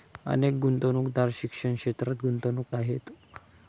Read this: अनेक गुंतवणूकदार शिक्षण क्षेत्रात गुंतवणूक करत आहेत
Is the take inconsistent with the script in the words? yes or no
yes